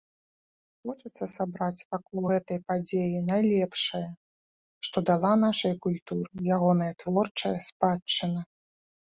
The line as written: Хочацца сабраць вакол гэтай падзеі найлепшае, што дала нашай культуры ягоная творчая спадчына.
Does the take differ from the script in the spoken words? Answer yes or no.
no